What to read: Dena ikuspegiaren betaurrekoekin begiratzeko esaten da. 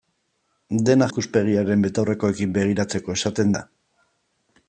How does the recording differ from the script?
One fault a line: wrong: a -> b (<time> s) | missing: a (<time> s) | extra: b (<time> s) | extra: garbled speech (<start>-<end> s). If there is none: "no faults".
no faults